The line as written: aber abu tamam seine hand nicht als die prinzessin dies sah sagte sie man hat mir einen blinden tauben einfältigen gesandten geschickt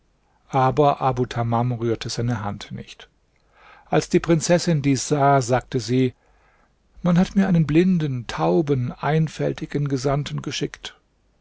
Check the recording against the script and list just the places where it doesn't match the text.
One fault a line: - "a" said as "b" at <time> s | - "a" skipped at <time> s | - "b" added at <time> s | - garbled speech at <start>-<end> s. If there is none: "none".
- "rührte" added at 1.7 s